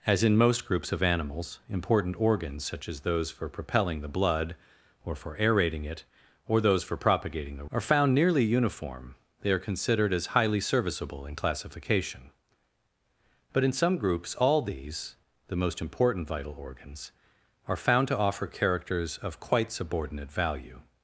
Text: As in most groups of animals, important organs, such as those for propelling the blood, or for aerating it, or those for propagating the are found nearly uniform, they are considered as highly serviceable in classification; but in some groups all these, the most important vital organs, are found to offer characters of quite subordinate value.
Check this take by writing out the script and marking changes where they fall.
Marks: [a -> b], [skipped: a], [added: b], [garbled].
As in most groups of animals, important organs, such as those for propelling the blood, or for aerating it, or those for propagating the are found nearly uniform, they are considered as highly serviceable in classification; but in some groups all these, the most important vital organs, are found to offer characters of quite subordinate value.